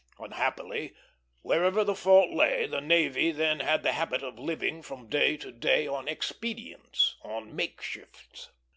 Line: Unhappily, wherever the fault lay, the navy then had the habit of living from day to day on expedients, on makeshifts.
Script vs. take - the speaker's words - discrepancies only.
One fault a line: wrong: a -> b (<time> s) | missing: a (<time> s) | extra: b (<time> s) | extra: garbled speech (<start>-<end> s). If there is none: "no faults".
no faults